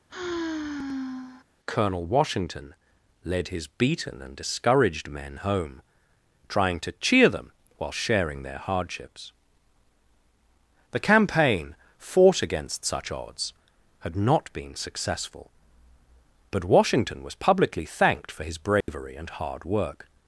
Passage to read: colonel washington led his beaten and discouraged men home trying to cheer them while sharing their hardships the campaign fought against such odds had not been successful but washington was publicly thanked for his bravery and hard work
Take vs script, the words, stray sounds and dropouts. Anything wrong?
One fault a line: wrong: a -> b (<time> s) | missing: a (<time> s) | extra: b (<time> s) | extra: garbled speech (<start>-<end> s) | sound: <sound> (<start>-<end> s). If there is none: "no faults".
sound: sigh (0.1-1.5 s)
sound: dropout (18.8-18.9 s)